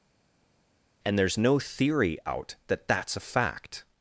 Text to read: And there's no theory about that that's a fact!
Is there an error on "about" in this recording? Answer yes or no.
yes